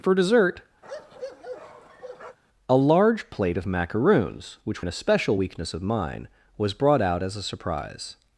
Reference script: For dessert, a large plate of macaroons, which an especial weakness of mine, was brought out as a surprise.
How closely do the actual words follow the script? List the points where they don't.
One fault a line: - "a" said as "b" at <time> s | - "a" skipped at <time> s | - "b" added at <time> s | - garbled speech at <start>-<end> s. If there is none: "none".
none